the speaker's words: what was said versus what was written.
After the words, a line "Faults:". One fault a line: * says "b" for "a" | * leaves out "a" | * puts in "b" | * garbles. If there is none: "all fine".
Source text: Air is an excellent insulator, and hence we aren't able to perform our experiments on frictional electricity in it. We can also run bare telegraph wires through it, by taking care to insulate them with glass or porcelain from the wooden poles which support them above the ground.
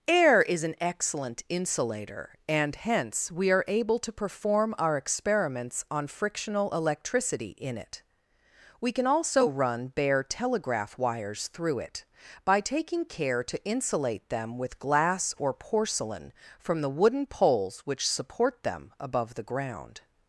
Air is an excellent insulator, and hence we are able to perform our experiments on frictional electricity in it. We can also run bare telegraph wires through it, by taking care to insulate them with glass or porcelain from the wooden poles which support them above the ground.
Faults:
* says "are" for "aren't"